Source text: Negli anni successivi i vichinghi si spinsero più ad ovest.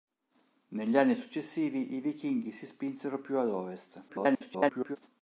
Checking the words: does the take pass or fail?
fail